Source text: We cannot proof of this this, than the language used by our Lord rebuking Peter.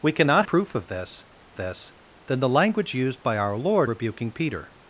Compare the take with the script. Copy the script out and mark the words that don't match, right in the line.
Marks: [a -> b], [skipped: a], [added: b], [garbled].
We cannot proof of this this, than the language used by our Lord rebuking Peter.